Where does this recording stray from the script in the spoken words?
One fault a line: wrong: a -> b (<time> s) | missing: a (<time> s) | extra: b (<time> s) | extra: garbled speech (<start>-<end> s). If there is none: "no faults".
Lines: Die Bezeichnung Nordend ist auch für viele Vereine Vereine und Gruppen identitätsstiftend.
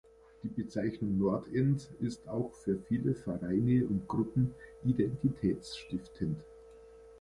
missing: Vereine (3.9 s)